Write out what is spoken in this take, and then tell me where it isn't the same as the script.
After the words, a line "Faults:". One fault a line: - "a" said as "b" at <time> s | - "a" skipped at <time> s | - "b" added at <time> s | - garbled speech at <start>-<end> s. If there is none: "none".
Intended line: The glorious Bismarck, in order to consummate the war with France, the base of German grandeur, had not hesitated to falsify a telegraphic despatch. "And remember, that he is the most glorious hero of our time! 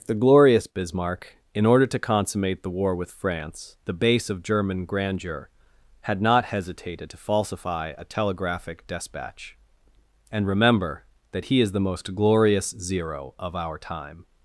The glorious Bismarck, in order to consummate the war with France, the base of German grandeur, had not hesitated to falsify a telegraphic despatch. "And remember, that he is the most glorious zero of our time!
Faults:
- "hero" said as "zero" at 12.8 s